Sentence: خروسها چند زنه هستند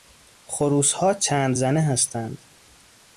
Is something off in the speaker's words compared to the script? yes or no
no